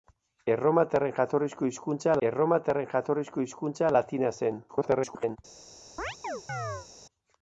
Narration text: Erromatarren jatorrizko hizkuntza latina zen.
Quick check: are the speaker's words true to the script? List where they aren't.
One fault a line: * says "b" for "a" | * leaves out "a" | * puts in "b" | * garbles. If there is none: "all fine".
* puts in "erromatarren jatorrizko hizkuntza"
* garbles